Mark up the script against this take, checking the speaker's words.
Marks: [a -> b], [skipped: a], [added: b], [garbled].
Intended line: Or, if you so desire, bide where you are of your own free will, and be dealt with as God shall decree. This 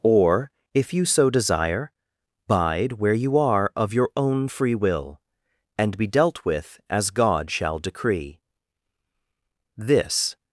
Or, if you so desire, bide where you are of your own free will, and be dealt with as God shall decree. This